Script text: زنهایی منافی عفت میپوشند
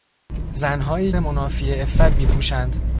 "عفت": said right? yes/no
yes